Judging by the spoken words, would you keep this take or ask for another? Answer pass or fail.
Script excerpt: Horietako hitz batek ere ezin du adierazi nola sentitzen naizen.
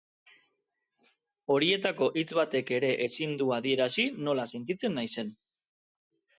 pass